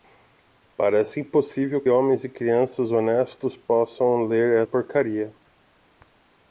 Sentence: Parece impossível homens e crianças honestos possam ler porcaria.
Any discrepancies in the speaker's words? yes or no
no